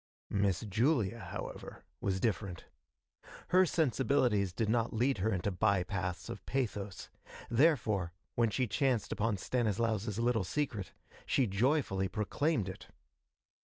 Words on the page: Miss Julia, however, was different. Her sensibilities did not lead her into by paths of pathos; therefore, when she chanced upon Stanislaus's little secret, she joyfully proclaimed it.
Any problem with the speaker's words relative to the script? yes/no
no